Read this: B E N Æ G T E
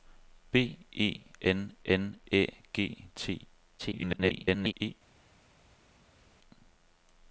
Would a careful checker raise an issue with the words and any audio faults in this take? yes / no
yes